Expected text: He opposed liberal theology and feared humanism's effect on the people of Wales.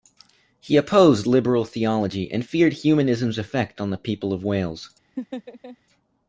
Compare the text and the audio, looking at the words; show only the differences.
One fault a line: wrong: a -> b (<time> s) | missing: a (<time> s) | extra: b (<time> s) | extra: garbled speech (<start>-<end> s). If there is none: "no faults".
no faults